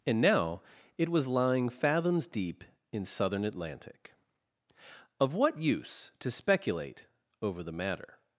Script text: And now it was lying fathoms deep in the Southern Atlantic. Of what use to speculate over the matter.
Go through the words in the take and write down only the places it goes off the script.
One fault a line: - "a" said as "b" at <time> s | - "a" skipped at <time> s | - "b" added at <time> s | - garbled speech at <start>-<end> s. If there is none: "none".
- "the" skipped at 3.0 s